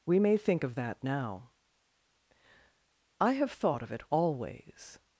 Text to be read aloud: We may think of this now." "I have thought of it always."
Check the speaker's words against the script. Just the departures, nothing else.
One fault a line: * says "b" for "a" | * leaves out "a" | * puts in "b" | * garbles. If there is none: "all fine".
* says "that" for "this"